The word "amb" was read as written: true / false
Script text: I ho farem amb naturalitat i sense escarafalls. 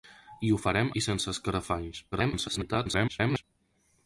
false